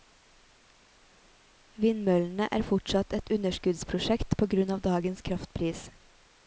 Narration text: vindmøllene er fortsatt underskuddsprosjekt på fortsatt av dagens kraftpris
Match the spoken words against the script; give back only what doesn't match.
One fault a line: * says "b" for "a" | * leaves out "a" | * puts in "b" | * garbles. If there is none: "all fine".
* puts in "et"
* says "grunn" for "fortsatt"